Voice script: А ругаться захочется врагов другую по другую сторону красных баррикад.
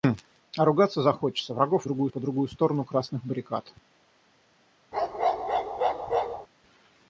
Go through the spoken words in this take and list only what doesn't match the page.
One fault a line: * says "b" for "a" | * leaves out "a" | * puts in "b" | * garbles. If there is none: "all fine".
all fine